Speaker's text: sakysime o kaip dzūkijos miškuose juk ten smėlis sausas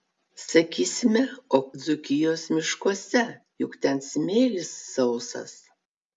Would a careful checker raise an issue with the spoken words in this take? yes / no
yes